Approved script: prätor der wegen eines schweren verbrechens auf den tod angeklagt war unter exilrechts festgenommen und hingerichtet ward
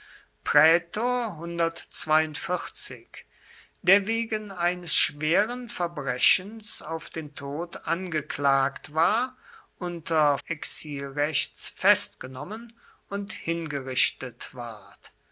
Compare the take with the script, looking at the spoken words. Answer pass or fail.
pass